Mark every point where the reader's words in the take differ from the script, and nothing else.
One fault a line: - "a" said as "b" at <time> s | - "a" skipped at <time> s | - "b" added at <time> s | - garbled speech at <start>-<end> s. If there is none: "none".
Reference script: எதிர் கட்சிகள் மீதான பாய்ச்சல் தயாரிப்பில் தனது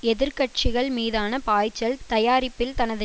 none